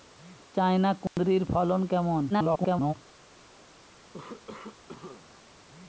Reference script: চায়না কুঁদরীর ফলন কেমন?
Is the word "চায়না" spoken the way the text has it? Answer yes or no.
yes